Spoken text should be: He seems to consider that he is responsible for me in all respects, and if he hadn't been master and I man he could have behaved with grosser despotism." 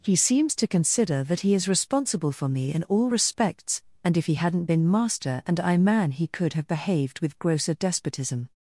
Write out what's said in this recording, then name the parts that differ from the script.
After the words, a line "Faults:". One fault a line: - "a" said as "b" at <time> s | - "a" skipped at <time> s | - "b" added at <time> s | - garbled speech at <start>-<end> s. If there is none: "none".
He seems to consider that he is responsible for me in all respects, and if he hadn't been master and I man he could have behaved with grosser despotism."
Faults:
none